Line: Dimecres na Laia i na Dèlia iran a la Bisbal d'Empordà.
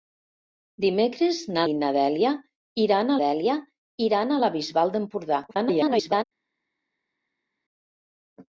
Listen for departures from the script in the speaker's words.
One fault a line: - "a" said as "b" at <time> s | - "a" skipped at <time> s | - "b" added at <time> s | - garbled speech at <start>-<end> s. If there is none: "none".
- "Laia" skipped at 1.6 s
- "Dèlia iran" added at 3.2 s
- garbled speech at 5.5-6.2 s